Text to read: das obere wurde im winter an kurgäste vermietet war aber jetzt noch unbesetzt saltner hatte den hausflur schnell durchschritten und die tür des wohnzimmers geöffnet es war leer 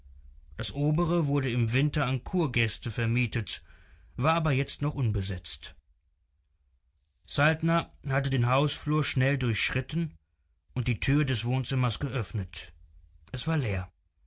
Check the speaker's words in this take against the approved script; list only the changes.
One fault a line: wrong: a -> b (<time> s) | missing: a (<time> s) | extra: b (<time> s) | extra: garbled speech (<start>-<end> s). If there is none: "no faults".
no faults